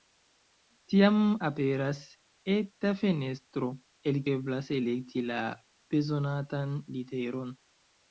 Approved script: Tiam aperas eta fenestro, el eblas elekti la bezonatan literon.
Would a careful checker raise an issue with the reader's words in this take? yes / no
no